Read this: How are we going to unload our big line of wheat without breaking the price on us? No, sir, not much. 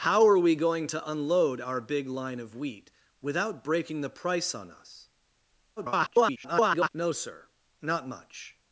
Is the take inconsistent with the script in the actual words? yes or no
yes